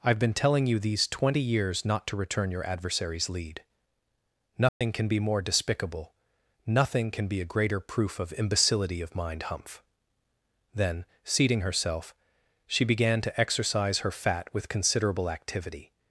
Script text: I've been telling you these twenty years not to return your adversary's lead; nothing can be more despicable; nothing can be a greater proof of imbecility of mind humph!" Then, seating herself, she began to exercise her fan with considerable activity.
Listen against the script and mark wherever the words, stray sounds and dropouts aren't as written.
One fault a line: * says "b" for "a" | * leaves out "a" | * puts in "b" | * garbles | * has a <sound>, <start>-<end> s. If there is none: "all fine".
* has a dropout, 4.7-4.8 s
* says "fat" for "fan"